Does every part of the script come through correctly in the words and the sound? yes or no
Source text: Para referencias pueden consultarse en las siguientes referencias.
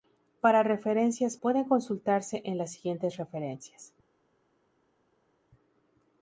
yes